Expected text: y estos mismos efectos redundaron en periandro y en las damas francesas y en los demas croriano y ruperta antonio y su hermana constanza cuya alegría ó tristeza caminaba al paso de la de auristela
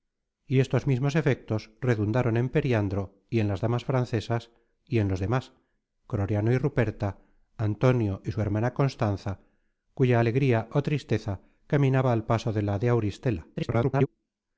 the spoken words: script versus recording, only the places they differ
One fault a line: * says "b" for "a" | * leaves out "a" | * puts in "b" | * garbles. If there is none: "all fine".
* garbles